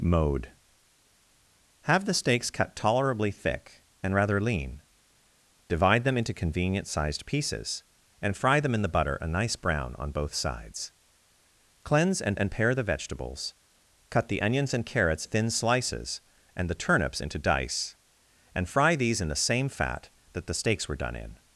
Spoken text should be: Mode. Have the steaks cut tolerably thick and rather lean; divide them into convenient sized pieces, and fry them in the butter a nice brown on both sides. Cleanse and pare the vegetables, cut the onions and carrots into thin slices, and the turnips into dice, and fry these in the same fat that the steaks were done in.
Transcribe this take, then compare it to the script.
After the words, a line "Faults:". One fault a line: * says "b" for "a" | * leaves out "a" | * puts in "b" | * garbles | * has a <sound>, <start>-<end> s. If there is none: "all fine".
Mode. Have the steaks cut tolerably thick and rather lean; divide them into convenient sized pieces, and fry them in the butter a nice brown on both sides. Cleanse and and pare the vegetables, cut the onions and carrots thin slices, and the turnips into dice, and fry these in the same fat that the steaks were done in.
Faults:
* puts in "and"
* leaves out "into"